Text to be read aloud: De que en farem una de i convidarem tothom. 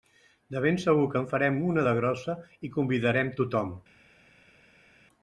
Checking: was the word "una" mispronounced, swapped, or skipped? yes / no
no